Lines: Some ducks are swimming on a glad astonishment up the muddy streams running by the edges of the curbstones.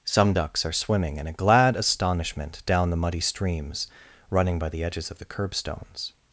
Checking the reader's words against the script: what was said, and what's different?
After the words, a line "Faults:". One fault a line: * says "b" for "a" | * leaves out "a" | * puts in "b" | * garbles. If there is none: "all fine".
Some ducks are swimming in a glad astonishment down the muddy streams running by the edges of the curbstones.
Faults:
* says "in" for "on"
* says "down" for "up"